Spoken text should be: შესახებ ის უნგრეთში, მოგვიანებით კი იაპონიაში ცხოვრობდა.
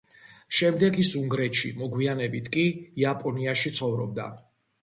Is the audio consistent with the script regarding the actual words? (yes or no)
no